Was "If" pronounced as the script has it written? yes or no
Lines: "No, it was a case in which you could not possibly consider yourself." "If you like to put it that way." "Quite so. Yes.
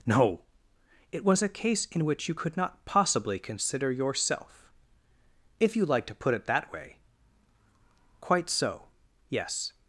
yes